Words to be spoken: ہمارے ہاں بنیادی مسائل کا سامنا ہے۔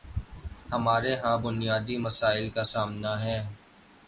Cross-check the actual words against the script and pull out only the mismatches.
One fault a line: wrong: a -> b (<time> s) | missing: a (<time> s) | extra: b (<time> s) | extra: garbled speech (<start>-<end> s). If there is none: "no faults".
no faults